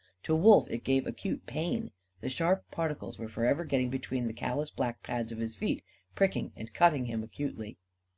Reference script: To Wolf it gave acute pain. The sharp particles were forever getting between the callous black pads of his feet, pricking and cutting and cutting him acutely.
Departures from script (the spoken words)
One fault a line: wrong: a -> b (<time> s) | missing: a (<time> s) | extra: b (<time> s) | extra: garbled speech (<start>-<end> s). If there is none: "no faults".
missing: and cutting (7.0 s)